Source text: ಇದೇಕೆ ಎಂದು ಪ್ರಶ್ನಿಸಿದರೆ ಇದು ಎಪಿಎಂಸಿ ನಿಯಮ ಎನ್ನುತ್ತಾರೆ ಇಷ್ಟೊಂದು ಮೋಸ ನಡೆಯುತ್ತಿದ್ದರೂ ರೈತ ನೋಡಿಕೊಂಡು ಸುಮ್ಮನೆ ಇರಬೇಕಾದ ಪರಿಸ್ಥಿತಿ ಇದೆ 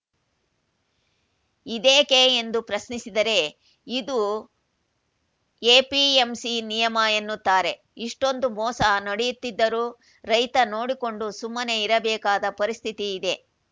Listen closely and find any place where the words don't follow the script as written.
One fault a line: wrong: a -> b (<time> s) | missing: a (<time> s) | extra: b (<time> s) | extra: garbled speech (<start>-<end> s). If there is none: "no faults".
no faults